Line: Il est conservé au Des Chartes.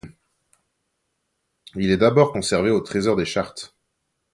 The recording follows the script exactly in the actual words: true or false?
false